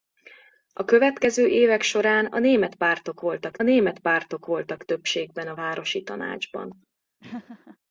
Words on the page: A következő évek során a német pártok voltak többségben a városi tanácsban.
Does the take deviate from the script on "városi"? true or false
false